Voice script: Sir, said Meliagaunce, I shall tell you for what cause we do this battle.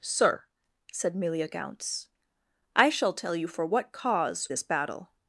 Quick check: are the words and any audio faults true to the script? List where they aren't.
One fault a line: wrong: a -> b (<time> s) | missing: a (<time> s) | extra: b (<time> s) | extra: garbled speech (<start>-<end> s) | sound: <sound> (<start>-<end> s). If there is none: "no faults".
missing: we do (4.5 s)